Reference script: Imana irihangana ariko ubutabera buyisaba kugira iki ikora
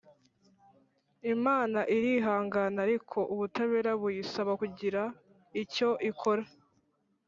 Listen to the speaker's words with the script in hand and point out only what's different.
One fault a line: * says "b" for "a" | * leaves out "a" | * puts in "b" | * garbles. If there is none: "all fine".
* says "icyo" for "iki"